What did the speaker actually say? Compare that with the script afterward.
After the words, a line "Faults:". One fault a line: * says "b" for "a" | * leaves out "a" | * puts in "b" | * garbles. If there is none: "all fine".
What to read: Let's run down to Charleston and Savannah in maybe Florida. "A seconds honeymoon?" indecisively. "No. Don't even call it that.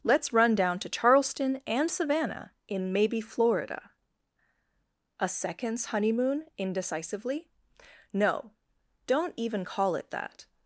Let's run down to Charleston and Savannah in maybe Florida. "A seconds honeymoon?" indecisively. "No. Don't even call it that.
Faults:
all fine